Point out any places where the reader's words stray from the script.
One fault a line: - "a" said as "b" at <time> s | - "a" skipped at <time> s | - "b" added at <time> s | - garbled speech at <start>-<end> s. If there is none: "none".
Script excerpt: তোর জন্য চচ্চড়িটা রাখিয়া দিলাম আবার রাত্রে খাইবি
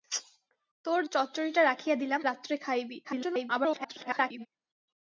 - "জন্য" skipped at 1.0 s
- "আবার" skipped at 2.2 s
- garbled speech at 3.0-4.5 s